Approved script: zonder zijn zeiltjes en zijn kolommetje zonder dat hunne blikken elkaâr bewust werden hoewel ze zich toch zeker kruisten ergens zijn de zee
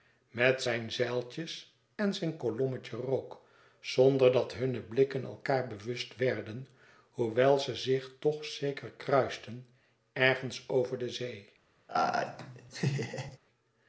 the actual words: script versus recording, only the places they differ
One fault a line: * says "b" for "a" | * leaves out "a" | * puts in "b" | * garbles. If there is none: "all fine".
* says "met" for "zonder"
* puts in "rook"
* says "over" for "zijn"